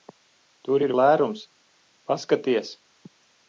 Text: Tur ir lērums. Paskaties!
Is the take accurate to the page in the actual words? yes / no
yes